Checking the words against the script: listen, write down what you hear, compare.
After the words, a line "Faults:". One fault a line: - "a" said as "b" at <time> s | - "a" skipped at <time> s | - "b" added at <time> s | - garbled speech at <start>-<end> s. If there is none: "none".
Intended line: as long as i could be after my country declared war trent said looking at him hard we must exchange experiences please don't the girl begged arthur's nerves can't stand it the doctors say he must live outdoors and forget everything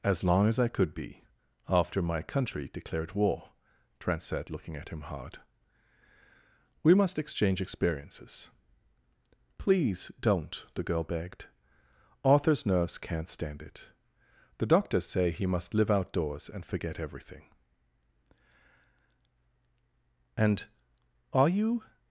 as long as i could be after my country declared war trent said looking at him hard we must exchange experiences please don't the girl begged arthur's nerves can't stand it the doctors say he must live outdoors and forget everything and are you
Faults:
- "and are you" added at 20.4 s